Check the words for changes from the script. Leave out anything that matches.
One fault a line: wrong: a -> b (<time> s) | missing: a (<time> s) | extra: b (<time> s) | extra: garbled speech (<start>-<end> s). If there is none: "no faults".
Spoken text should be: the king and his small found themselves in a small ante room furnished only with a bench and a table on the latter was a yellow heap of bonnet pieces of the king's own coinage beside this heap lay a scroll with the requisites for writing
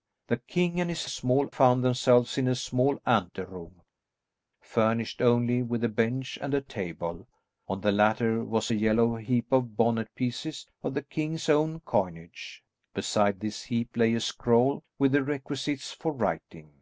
no faults